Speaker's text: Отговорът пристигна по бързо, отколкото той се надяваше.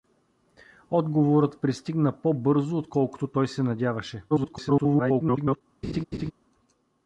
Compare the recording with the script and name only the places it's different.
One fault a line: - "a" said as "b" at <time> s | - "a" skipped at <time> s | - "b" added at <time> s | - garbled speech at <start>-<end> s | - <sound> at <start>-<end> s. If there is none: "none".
- garbled speech at 4.3-5.6 s
- laugh at 5.8-6.3 s